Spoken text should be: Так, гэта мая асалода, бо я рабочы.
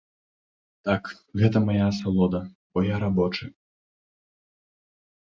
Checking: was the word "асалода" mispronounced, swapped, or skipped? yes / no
no